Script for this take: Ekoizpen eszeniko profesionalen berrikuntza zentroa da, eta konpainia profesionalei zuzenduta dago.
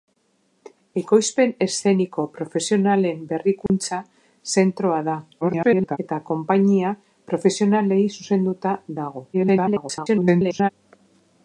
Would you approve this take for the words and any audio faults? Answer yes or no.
no